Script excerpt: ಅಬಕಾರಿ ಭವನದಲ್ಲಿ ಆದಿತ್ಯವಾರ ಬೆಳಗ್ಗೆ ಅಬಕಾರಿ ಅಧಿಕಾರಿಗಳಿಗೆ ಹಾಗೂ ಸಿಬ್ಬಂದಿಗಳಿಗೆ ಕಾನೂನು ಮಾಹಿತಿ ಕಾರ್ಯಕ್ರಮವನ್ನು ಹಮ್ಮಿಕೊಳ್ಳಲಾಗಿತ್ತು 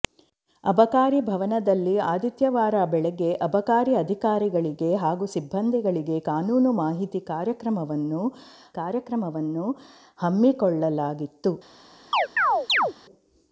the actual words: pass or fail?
fail